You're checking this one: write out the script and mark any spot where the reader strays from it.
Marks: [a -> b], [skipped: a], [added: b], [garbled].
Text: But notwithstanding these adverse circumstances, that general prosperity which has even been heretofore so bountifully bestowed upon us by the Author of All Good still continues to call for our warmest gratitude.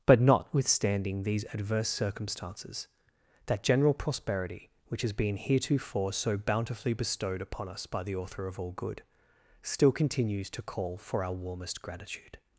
But notwithstanding these adverse circumstances, that general prosperity which has [skipped: even] been heretofore so bountifully bestowed upon us by the Author of All Good still continues to call for our warmest gratitude.